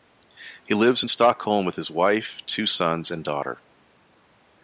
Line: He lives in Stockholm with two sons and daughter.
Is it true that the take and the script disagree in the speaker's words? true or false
true